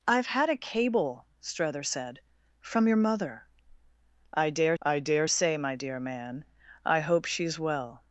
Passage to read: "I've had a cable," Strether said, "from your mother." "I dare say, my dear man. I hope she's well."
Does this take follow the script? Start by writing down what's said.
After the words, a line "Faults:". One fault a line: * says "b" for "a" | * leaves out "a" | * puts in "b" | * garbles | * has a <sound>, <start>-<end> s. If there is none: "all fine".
"I've had a cable," Strether said, "from your mother." "I dare I dare say, my dear man. I hope she's well."
Faults:
* puts in "I dare"